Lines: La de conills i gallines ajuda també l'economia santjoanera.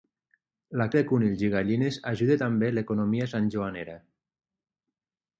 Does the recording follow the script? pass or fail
pass